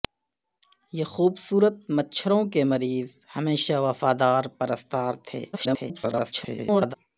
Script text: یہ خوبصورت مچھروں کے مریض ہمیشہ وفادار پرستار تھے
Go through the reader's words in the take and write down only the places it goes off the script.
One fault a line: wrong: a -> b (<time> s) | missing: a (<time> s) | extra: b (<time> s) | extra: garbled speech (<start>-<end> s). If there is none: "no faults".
extra: garbled speech (5.5-6.9 s)